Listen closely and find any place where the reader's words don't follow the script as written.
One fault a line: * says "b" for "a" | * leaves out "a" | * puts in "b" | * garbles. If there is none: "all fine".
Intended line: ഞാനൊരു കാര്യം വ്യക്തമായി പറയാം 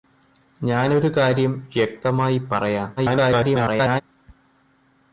* garbles